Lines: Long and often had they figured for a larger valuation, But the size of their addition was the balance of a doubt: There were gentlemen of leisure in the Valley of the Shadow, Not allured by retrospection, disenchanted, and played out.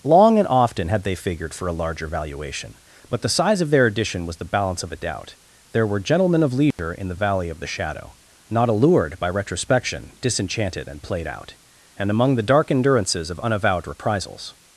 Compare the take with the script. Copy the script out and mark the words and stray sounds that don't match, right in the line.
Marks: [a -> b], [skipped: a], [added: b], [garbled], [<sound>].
Long and often had they figured for a larger valuation, But the size of their addition was the balance of a doubt: There were gentlemen of leisure [dropout] in the Valley of the Shadow, Not allured by retrospection, disenchanted, and played out. [added: And among the dark endurances of unavowed reprisals]